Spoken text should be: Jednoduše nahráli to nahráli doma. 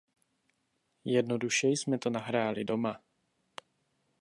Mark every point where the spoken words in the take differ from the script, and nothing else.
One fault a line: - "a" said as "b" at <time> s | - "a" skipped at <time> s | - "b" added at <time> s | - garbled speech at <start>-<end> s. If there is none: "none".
- "nahráli" said as "jsme" at 1.7 s